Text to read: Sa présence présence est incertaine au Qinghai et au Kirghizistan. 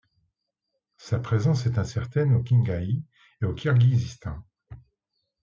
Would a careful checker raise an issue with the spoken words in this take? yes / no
yes